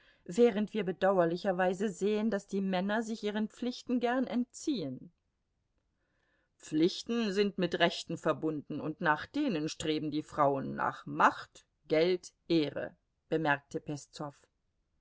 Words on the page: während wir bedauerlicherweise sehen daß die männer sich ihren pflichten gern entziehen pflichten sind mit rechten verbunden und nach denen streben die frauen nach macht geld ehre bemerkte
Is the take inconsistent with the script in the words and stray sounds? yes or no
no